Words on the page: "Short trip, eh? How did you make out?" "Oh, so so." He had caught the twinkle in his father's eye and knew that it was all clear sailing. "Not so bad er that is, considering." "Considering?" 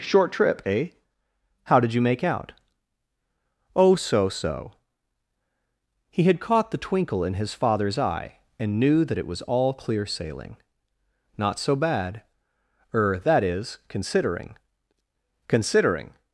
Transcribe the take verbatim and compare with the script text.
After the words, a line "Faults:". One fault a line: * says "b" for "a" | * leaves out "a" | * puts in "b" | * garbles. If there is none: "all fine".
"Short trip, eh? How did you make out?" "Oh, so so." He had caught the twinkle in his father's eye and knew that it was all clear sailing. "Not so bad er that is, considering." "Considering?"
Faults:
all fine